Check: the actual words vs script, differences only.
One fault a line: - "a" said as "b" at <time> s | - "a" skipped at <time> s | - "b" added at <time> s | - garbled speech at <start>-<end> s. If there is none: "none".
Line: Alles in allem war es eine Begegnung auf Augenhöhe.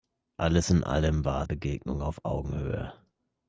- "es eine" skipped at 1.4 s